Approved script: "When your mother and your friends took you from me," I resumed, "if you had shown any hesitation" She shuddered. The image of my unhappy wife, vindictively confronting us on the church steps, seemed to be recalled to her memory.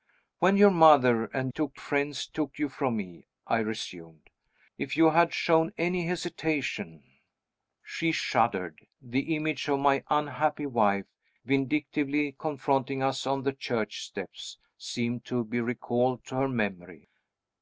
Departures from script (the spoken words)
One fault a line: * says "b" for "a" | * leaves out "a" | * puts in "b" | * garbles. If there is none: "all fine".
* says "took" for "your"